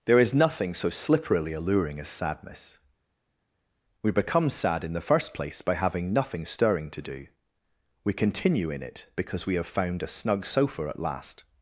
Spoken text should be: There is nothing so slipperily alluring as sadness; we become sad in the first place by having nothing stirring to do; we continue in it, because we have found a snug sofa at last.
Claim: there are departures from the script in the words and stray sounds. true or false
false